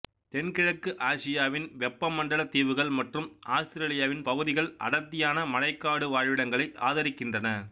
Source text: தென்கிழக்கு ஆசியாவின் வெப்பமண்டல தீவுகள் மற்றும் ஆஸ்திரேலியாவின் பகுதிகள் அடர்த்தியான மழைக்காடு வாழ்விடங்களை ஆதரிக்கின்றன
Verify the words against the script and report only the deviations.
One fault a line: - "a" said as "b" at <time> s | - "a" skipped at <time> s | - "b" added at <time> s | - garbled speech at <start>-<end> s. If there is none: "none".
none